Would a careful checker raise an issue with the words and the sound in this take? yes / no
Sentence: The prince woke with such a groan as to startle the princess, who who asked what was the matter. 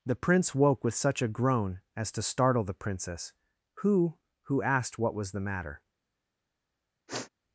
yes